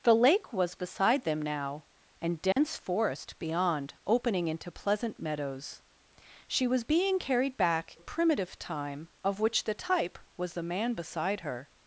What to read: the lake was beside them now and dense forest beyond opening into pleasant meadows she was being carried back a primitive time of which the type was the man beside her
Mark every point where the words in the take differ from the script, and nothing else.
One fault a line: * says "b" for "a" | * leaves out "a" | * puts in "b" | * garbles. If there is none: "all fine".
all fine